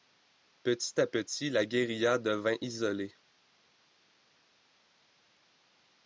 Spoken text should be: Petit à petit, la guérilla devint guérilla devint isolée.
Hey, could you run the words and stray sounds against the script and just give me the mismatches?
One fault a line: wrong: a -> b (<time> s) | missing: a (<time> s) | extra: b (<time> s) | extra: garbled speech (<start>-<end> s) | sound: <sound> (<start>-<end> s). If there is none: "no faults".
missing: guérilla devint (2.5 s)